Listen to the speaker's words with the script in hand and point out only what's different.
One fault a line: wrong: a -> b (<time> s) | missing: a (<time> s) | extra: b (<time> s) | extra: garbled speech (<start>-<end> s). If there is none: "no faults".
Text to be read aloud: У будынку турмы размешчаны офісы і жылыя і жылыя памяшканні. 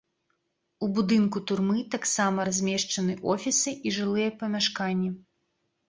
extra: таксама (2.0 s)
missing: і жылыя (4.3 s)